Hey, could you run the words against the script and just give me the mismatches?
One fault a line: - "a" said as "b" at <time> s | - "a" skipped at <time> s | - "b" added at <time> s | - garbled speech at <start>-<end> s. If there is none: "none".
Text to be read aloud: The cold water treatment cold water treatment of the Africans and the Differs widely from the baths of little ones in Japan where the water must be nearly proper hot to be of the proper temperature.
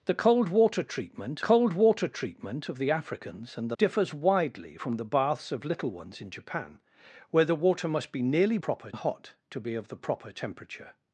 none